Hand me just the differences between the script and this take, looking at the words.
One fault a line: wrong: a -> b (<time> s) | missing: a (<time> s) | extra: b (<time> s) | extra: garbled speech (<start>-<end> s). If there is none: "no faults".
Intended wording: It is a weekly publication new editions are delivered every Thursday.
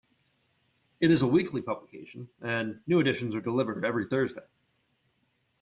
extra: and (2.4 s)